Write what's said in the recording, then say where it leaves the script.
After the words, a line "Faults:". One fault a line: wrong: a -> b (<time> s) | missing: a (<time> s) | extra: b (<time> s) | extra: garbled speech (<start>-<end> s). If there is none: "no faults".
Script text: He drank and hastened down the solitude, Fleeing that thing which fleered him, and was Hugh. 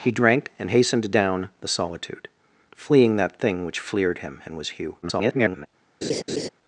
He drank and hastened down the solitude, Fleeing that thing which fleered him, and was Hugh. [garbled]
Faults:
extra: garbled speech (5.0-5.7 s)